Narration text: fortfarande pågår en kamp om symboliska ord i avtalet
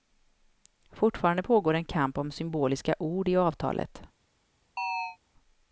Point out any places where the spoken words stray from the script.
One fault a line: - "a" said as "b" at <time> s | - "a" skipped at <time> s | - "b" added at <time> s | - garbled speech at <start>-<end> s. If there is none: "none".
none